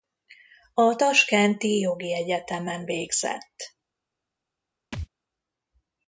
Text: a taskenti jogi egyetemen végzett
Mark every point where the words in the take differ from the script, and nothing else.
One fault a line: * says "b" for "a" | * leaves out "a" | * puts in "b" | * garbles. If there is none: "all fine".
all fine